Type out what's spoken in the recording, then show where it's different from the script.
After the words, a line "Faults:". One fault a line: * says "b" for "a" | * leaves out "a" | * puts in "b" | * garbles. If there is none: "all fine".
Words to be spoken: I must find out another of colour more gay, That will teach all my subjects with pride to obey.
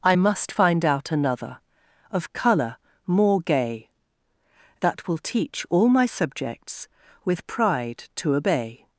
I must find out another of colour more gay, That will teach all my subjects with pride to obey.
Faults:
all fine